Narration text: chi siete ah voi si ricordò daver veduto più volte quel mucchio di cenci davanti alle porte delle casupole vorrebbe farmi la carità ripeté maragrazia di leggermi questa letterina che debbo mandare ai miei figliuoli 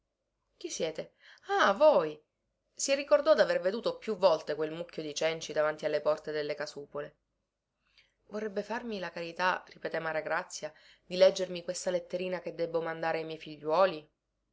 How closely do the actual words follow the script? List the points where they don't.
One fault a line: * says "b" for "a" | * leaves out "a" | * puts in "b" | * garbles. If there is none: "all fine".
all fine